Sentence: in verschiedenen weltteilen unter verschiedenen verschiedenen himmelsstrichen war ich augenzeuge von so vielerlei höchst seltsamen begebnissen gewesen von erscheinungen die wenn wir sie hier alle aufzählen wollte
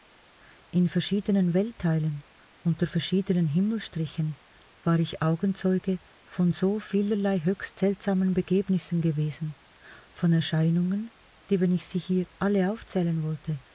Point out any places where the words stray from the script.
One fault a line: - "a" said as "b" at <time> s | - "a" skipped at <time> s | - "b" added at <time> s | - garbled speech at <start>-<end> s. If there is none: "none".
- "verschiedenen" skipped at 3.5 s
- "wir" said as "ich" at 11.7 s